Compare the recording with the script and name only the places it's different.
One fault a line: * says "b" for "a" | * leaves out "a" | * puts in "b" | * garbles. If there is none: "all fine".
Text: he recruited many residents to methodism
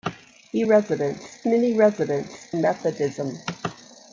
* says "residents" for "recruited"
* leaves out "to"